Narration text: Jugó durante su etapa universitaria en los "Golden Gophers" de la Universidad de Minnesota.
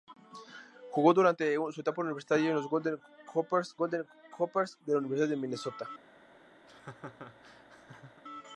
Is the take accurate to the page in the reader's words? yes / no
no